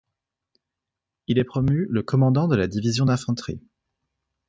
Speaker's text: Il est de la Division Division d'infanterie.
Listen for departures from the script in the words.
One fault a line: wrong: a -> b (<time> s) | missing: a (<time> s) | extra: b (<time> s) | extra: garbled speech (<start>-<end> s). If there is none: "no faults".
extra: promu le commandant (1.4 s)
missing: Division (3.0 s)